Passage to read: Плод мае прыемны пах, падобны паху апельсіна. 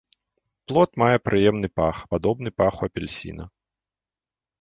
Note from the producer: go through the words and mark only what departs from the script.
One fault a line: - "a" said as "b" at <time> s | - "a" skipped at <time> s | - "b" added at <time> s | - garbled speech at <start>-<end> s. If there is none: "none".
none